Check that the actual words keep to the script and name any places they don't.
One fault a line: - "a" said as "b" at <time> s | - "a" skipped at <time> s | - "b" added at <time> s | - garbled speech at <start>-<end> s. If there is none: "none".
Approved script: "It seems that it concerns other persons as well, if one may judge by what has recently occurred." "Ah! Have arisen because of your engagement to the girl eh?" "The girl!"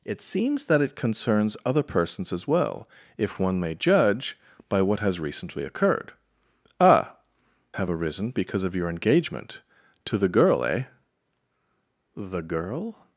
none